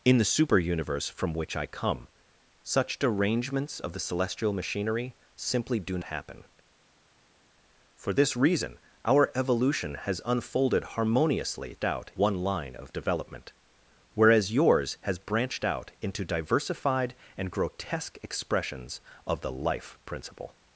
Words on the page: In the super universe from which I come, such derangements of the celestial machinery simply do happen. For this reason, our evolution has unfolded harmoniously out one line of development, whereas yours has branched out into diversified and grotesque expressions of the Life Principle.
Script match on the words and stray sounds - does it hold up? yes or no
yes